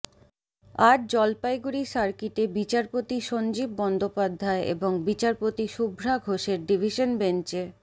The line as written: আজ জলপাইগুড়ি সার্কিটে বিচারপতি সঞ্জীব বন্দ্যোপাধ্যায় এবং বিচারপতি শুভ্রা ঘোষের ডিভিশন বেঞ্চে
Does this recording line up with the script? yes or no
yes